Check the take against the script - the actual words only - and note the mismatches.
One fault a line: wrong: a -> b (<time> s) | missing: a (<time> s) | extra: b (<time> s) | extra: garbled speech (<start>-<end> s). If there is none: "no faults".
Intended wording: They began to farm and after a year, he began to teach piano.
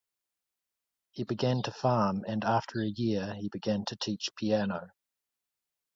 wrong: They -> He (1.1 s)